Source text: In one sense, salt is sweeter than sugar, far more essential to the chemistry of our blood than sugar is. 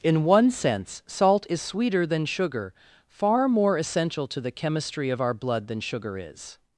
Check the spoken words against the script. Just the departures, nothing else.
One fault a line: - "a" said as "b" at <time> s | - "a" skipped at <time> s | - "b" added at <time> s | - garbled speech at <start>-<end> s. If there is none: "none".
none